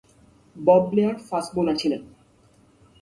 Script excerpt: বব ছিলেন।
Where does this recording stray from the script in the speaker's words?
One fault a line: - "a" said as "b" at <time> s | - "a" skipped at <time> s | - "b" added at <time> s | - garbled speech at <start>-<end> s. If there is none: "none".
- "ব্লেয়ার ফাস্ট বোলার" added at 0.9 s